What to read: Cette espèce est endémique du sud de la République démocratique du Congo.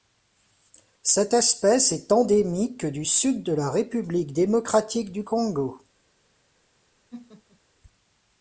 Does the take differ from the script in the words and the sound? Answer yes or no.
yes